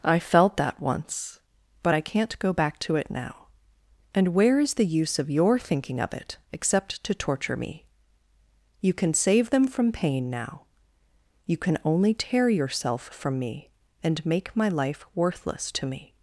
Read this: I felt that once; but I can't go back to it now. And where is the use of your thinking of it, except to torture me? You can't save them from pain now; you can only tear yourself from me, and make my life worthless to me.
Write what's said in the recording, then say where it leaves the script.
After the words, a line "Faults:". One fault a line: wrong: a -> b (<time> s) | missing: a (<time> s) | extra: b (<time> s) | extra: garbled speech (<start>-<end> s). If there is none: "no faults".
I felt that once; but I can't go back to it now. And where is the use of your thinking of it, except to torture me? You can save them from pain now; you can only tear yourself from me, and make my life worthless to me.
Faults:
wrong: can't -> can (8.9 s)